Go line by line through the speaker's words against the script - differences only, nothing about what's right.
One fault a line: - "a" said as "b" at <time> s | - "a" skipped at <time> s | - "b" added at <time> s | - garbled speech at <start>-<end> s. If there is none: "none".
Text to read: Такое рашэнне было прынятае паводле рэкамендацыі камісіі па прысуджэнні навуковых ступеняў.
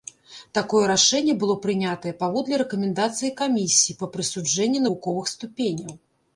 none